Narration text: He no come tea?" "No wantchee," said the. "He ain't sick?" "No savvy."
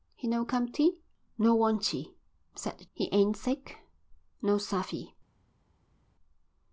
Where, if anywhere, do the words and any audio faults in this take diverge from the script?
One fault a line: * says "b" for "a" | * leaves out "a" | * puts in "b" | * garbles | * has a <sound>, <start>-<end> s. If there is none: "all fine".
all fine